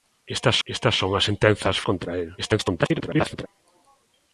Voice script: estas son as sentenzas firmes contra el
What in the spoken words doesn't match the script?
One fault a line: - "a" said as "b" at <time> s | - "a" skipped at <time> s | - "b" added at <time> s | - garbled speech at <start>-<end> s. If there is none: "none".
- "estas" added at 0.6 s
- "firmes" skipped at 1.8 s
- garbled speech at 2.4-3.5 s